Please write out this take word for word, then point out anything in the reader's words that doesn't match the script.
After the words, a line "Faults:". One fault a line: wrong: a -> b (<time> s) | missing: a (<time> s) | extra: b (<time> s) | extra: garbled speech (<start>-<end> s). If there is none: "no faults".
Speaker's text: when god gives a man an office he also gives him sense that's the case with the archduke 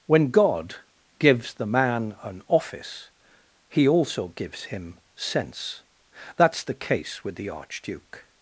when god gives the man an office he also gives him sense that's the case with the archduke
Faults:
wrong: a -> the (1.5 s)